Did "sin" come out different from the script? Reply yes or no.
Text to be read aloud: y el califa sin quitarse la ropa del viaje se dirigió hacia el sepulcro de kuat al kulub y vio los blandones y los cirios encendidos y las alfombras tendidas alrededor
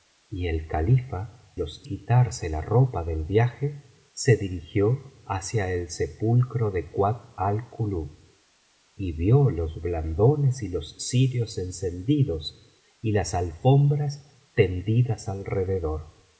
yes